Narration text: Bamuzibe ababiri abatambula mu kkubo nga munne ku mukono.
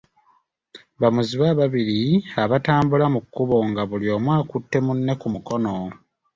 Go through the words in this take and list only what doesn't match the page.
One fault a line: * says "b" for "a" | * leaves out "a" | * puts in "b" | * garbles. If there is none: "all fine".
* puts in "buli omu akutte"